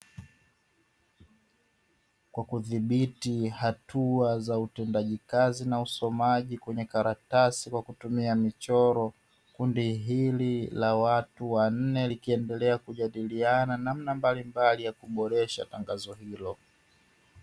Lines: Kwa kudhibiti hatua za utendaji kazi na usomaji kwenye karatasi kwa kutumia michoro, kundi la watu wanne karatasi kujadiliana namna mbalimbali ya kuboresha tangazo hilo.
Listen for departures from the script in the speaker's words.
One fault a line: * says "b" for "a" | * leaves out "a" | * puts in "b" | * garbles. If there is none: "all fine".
* puts in "hili"
* says "likiendelea" for "karatasi"